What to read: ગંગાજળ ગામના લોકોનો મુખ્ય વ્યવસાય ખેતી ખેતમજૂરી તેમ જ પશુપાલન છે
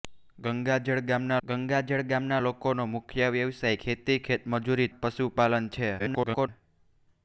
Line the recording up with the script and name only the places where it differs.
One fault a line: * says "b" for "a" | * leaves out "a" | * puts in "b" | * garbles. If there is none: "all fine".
* puts in "ગંગાજળ ગામના"
* leaves out "તેમ"
* garbles